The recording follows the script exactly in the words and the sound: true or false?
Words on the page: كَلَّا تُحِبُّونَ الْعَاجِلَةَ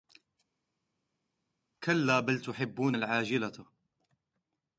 false